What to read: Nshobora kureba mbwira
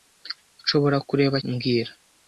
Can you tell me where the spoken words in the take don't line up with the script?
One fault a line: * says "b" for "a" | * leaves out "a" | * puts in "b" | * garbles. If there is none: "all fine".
all fine